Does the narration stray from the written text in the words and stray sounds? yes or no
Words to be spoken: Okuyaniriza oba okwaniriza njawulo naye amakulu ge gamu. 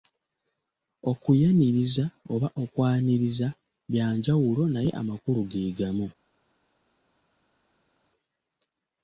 yes